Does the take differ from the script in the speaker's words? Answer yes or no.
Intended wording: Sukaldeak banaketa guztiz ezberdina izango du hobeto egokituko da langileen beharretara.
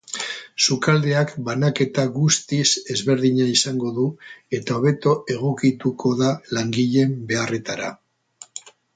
yes